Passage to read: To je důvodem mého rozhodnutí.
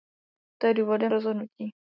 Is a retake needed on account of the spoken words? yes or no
yes